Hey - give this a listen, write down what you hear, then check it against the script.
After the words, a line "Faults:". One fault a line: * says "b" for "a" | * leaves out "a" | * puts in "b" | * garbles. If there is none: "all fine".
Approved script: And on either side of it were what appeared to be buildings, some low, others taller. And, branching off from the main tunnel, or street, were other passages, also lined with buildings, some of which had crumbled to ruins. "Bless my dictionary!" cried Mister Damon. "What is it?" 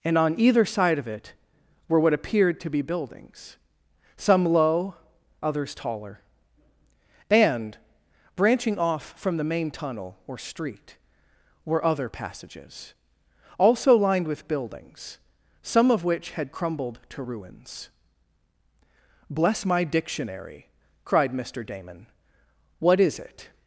And on either side of it were what appeared to be buildings, some low, others taller. And, branching off from the main tunnel, or street, were other passages, also lined with buildings, some of which had crumbled to ruins. "Bless my dictionary!" cried Mister Damon. "What is it?"
Faults:
all fine